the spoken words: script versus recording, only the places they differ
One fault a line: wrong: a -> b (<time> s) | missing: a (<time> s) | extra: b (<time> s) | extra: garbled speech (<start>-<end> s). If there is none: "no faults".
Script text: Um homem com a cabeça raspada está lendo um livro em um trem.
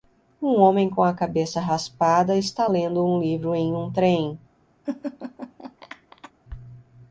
no faults